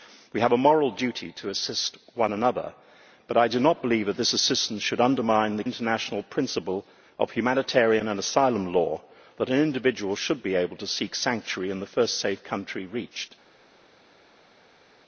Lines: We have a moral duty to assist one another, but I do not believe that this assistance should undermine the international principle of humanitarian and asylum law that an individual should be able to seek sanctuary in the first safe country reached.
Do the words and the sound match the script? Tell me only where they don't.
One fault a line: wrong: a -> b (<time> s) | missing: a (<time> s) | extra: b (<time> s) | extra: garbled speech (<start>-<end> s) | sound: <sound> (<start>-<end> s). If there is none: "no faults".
no faults